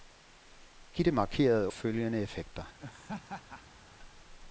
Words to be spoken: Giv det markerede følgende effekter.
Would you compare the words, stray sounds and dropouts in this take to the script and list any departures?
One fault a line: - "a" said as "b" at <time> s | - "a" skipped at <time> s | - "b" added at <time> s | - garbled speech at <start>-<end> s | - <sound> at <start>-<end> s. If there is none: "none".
- laugh at 2.8-3.8 s